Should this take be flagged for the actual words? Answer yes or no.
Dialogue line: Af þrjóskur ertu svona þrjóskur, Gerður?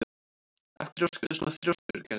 no